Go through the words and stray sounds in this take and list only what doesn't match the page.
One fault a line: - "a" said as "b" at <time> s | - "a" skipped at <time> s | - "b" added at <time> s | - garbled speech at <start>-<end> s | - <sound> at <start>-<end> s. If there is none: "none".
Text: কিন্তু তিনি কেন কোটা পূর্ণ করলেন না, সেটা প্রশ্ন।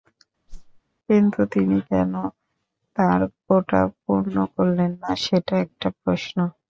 - whoosh at 0.5-0.8 s
- "তাঁর" added at 3.0 s
- "একটা" added at 5.6 s